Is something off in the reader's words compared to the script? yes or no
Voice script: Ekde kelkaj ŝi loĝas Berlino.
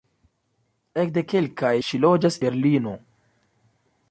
no